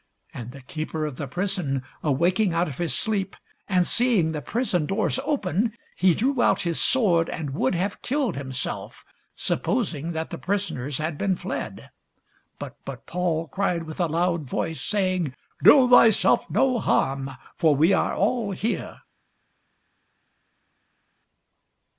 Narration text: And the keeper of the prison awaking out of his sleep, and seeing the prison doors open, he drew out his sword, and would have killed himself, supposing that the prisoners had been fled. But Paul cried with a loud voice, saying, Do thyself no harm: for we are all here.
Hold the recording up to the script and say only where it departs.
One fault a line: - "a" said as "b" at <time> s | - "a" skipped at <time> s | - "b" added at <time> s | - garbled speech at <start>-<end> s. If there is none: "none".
- "but" added at 12.8 s